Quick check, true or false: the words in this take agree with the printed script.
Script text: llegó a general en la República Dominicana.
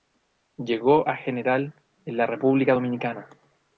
true